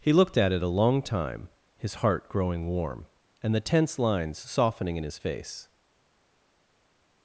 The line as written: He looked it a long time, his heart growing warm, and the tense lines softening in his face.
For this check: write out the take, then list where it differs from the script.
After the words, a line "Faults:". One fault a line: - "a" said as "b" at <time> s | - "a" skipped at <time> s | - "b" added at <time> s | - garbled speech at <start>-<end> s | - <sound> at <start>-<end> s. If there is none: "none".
He looked at it a long time, his heart growing warm, and the tense lines softening in his face.
Faults:
- "at" added at 0.3 s